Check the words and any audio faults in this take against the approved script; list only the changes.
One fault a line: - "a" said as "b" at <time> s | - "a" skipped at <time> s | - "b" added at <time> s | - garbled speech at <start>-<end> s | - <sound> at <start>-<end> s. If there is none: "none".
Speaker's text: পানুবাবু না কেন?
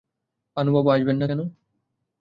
- "আসবেন" added at 0.9 s